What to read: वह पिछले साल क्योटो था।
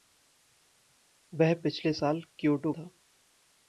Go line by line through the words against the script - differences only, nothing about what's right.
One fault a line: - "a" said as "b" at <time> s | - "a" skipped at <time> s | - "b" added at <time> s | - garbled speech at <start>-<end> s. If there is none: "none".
none